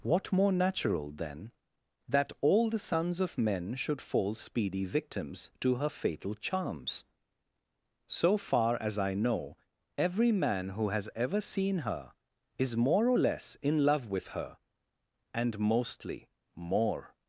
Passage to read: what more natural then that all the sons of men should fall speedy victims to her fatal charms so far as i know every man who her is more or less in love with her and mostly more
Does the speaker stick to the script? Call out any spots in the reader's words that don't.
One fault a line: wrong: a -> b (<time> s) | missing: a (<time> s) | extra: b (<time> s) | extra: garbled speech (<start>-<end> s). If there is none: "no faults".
extra: has ever seen (10.9 s)